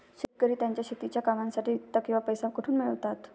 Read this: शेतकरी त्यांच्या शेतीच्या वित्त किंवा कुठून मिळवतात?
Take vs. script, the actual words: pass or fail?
fail